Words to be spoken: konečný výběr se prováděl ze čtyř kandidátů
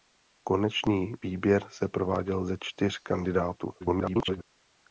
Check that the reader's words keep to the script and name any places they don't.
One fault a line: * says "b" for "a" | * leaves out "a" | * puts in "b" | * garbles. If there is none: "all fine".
* garbles